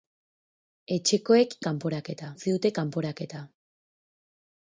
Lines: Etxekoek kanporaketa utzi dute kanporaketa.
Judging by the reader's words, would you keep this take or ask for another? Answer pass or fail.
pass